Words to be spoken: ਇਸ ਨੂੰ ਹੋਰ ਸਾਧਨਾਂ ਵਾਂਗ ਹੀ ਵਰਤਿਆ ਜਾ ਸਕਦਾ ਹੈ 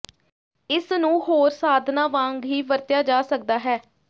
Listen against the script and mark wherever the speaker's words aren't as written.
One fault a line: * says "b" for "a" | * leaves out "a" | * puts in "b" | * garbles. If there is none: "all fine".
all fine